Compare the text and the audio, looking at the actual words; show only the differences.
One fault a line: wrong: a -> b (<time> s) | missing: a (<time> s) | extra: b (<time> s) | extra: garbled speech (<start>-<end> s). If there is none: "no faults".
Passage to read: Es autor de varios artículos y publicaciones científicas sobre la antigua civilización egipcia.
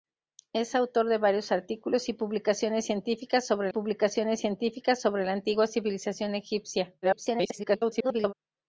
extra: publicaciones científicas sobre (3.7 s)
extra: garbled speech (7.0-8.3 s)